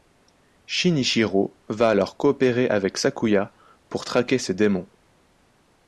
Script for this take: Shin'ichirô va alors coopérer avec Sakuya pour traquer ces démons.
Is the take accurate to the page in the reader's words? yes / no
yes